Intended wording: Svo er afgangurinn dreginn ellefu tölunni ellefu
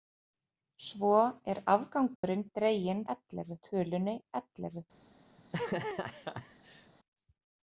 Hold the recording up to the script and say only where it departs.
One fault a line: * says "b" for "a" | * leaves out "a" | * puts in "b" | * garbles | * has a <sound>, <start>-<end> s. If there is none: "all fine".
* has a dropout, 2.2-2.2 s
* has a laugh, 5.4-6.9 s